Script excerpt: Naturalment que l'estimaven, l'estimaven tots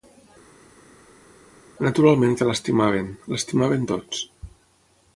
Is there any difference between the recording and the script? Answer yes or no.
no